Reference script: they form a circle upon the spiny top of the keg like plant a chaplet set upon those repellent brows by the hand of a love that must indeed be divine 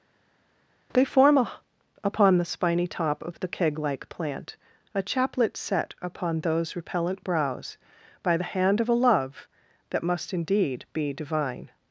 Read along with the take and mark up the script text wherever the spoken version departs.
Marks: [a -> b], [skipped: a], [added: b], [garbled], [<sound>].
they form a [skipped: circle] upon the spiny top of the keg like plant a chaplet set upon those repellent brows by the hand of a love that must indeed be divine